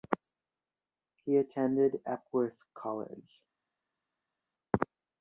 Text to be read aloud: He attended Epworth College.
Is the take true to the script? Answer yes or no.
yes